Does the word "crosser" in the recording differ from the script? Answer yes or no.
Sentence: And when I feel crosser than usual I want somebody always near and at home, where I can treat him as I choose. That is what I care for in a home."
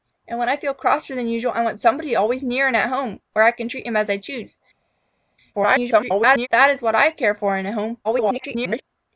no